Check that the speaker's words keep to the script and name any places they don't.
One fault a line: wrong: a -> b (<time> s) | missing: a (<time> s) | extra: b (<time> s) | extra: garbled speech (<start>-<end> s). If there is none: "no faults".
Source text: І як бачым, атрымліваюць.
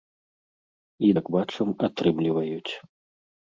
no faults